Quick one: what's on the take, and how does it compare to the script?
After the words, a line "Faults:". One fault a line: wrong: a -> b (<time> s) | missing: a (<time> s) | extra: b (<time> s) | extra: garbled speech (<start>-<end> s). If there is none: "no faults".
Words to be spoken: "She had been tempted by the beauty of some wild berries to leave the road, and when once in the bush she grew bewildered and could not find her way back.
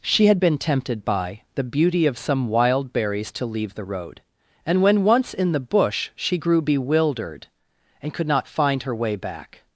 "She had been tempted by the beauty of some wild berries to leave the road, and when once in the bush she grew bewildered and could not find her way back.
Faults:
no faults